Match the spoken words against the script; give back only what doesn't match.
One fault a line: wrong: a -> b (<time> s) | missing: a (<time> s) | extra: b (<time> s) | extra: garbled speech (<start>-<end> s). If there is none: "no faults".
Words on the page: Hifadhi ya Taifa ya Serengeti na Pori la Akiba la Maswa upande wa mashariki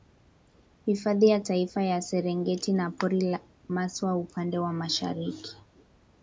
missing: la Akiba la (3.4 s)